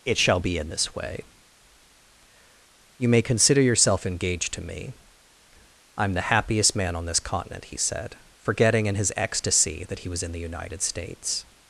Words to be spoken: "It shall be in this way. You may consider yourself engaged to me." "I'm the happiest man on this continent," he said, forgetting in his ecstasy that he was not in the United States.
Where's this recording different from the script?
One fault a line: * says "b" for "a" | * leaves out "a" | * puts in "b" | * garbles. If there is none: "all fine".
* leaves out "not"